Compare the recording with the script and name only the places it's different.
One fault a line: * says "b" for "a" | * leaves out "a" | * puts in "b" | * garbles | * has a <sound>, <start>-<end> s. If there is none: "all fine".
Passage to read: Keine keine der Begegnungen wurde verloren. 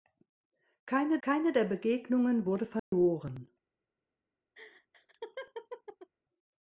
* has a dropout, 2.8-2.9 s
* has a laugh, 4.6-6.1 s